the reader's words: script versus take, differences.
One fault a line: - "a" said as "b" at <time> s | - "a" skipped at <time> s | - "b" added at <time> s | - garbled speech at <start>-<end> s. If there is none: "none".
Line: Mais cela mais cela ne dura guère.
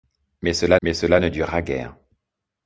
none